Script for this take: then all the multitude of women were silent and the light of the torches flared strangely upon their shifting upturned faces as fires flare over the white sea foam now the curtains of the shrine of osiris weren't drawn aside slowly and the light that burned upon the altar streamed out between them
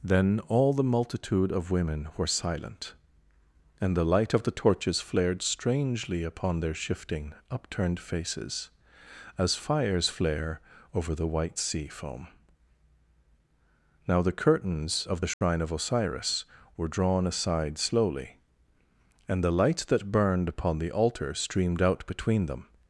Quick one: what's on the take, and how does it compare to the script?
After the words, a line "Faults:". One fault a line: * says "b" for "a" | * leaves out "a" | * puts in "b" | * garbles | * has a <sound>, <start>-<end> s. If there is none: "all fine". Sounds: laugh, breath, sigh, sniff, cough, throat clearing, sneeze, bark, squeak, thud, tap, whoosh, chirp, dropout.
then all the multitude of women were silent and the light of the torches flared strangely upon their shifting upturned faces as fires flare over the white sea foam now the curtains of the shrine of osiris were drawn aside slowly and the light that burned upon the altar streamed out between them
Faults:
* has a dropout, 15.3-15.4 s
* says "were" for "weren't"